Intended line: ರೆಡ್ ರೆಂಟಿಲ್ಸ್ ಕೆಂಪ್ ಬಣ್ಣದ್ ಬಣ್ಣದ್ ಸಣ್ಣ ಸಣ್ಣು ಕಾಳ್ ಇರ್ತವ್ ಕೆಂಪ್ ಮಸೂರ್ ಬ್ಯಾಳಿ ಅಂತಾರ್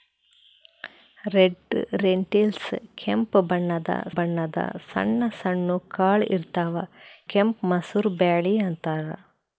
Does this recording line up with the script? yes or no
yes